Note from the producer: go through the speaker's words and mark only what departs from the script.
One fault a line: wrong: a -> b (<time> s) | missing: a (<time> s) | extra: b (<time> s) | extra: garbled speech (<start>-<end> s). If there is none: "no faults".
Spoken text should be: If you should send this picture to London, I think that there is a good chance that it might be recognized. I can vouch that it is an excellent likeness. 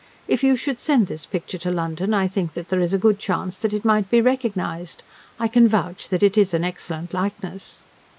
no faults